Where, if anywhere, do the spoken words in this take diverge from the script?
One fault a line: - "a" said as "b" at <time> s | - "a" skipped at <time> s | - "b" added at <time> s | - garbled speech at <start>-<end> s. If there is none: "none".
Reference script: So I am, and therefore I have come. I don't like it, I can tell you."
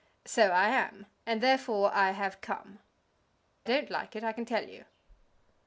- "I" skipped at 2.8 s